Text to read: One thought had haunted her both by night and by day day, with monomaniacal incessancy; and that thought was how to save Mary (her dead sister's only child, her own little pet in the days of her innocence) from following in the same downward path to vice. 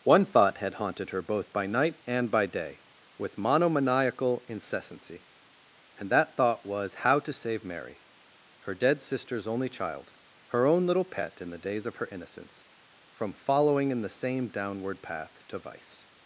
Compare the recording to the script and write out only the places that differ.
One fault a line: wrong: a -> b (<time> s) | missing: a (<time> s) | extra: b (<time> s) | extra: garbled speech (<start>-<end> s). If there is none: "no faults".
missing: day (2.8 s)